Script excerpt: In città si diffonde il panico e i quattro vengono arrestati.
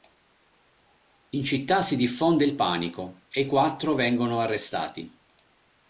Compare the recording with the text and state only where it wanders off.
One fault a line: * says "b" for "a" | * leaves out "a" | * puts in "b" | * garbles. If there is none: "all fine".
all fine